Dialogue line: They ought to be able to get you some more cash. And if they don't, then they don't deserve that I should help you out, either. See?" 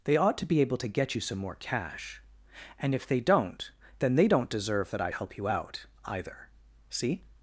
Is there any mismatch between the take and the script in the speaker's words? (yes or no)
yes